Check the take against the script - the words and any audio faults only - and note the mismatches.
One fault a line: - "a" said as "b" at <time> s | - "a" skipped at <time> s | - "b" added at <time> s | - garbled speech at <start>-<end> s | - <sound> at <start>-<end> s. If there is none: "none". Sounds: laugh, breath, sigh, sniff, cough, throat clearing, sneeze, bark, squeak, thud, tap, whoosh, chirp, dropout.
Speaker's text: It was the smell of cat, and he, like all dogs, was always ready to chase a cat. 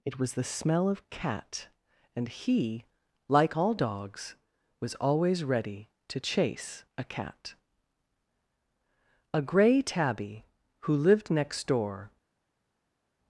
- "A gray tabby who lived next door" added at 9.3 s